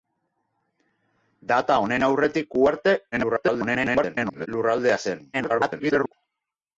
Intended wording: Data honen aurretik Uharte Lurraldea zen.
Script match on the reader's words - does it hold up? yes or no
no